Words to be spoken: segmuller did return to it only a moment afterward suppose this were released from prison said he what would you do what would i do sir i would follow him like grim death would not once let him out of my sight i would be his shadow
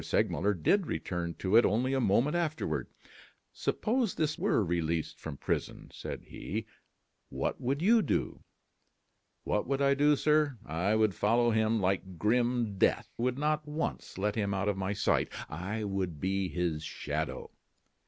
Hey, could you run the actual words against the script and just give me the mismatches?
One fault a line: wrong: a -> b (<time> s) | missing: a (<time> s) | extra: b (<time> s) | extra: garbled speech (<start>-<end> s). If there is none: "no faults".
no faults